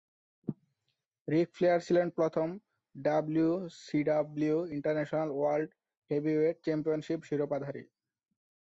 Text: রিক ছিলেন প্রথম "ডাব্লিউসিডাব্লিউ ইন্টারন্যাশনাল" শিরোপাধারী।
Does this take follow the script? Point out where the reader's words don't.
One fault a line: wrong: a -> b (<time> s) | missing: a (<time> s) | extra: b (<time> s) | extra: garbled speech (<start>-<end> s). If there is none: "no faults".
extra: ফ্লেয়ার (1.6 s)
extra: ওয়ার্ল্ড হেভিওয়েট চ্যাম্পিয়নশিপ (5.3 s)